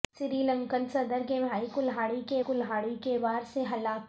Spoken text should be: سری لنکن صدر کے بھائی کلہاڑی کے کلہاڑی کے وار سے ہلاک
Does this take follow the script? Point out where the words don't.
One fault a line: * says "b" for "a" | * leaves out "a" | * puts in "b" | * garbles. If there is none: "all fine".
all fine